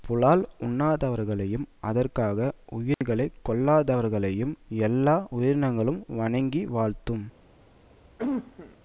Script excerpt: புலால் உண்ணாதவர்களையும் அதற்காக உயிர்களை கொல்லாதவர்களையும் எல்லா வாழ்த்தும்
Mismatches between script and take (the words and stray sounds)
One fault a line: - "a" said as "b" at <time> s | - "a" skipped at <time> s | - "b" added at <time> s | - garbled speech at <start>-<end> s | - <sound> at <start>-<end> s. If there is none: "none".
- dropout at 2.9-3.0 s
- "உயிரினங்களும் வணங்கி" added at 5.3 s
- cough at 8.2-8.8 s